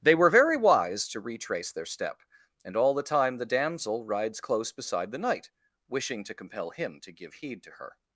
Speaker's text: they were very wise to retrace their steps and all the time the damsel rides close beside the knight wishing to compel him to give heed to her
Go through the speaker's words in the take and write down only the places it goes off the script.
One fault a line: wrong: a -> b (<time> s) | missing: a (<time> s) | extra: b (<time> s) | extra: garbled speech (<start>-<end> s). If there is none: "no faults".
wrong: steps -> step (1.9 s)